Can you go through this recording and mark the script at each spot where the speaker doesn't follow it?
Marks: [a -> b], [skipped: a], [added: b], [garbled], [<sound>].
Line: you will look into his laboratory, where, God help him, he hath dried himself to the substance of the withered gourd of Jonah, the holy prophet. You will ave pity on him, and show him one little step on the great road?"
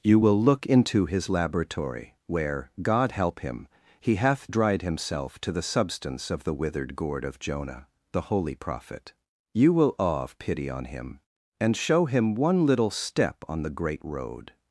you will look into his laboratory, where, God help him, he hath dried himself to the substance of the withered gourd of Jonah, the holy prophet. You will [ave -> awe of] pity on him, and show him one little step on the great road?"